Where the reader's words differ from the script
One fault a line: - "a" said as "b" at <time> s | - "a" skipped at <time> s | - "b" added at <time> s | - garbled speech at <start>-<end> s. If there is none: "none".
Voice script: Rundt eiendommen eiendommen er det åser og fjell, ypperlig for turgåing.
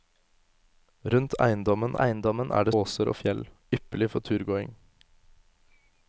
none